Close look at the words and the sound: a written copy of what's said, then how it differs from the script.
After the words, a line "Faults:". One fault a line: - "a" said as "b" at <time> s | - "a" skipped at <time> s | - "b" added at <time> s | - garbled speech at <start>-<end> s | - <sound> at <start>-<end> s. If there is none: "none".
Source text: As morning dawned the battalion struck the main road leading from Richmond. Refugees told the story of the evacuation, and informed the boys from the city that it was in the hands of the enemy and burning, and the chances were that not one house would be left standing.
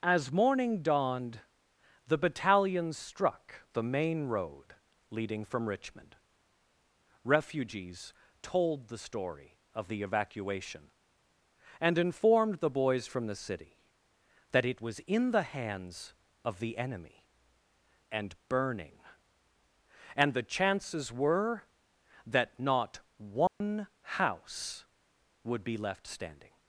As morning dawned the battalion struck the main road leading from Richmond. Refugees told the story of the evacuation, and informed the boys from the city that it was in the hands of the enemy and burning, and the chances were that not one house would be left standing.
Faults:
- dropout at 23.5-23.6 s